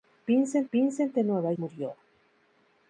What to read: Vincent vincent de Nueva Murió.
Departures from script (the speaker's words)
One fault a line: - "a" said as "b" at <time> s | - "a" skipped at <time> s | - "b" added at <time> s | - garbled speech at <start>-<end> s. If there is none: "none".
none